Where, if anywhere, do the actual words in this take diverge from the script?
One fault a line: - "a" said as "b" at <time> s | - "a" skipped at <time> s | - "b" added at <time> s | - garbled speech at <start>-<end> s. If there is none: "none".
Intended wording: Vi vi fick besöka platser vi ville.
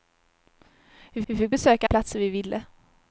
none